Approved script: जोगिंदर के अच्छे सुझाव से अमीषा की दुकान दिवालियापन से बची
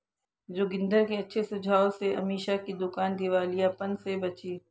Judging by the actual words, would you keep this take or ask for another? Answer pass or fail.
pass